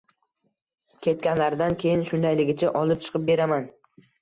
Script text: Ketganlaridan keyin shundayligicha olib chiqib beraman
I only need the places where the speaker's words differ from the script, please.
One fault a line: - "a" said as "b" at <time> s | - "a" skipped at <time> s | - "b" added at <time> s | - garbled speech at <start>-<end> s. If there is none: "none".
none